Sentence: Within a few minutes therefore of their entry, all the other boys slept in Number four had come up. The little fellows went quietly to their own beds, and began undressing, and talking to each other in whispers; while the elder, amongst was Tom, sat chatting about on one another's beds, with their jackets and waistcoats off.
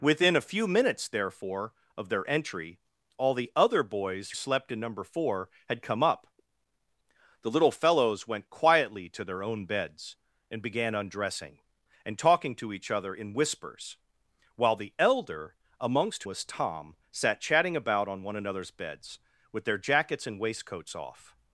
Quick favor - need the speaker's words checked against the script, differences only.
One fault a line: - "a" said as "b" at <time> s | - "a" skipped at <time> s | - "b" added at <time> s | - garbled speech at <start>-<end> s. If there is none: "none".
none